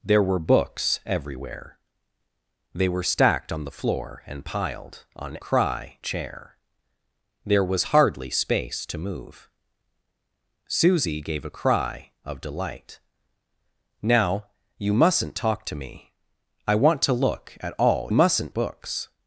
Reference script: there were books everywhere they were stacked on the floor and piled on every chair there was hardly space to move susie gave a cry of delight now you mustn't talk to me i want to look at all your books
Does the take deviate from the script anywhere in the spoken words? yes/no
yes